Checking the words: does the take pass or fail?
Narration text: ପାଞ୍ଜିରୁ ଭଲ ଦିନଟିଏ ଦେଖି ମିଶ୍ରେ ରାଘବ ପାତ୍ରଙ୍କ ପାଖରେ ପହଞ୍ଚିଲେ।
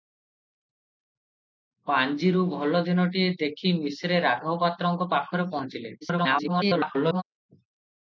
fail